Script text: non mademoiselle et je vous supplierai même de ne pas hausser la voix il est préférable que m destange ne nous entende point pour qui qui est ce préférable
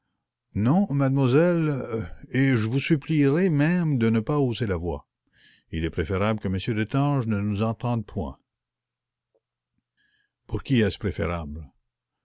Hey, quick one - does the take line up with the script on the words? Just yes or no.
no